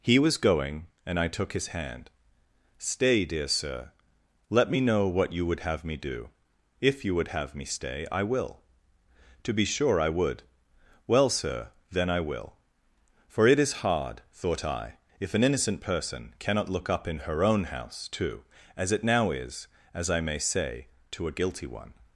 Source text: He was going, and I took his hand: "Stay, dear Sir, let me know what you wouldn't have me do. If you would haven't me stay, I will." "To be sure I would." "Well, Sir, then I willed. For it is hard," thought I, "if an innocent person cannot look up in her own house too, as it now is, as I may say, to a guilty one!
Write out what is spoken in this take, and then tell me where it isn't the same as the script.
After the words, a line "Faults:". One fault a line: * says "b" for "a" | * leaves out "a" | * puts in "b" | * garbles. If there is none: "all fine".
He was going, and I took his hand: "Stay, dear Sir, let me know what you would have me do. If you would have me stay, I will." "To be sure I would." "Well, Sir, then I will. For it is hard," thought I, "if an innocent person cannot look up in her own house too, as it now is, as I may say, to a guilty one!
Faults:
* says "would" for "wouldn't"
* says "have" for "haven't"
* says "will" for "willed"